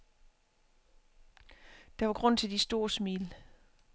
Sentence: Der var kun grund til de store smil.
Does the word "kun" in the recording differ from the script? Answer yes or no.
yes